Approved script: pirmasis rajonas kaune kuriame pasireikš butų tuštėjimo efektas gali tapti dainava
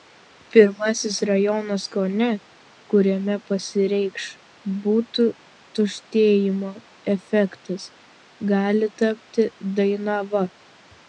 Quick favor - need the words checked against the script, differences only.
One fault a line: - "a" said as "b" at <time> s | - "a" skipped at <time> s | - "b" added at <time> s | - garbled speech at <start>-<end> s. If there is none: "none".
none